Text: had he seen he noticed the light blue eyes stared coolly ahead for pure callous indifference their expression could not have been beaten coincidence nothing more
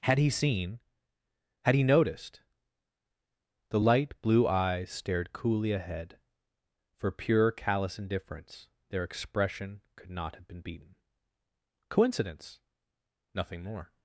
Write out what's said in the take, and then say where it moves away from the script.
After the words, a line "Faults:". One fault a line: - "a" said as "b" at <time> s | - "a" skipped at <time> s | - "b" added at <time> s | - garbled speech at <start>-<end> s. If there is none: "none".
had he seen had he noticed the light blue eyes stared coolly ahead for pure callous indifference their expression could not have been beaten coincidence nothing more
Faults:
- "had" added at 1.6 s